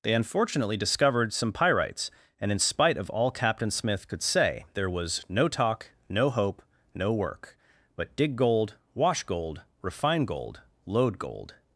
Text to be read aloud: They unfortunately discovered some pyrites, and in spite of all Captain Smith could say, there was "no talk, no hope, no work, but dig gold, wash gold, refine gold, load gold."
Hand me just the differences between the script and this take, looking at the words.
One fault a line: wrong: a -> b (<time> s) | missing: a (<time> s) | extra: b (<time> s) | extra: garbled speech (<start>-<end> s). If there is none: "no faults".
no faults